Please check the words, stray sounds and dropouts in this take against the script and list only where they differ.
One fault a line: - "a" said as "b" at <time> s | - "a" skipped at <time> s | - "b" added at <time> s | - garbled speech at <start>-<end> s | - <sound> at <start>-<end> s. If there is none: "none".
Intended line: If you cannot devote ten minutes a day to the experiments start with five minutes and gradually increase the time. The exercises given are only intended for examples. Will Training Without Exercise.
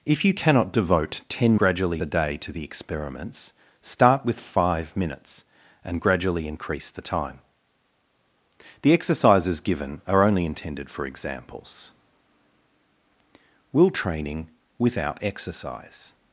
- "minutes" said as "gradually" at 1.6 s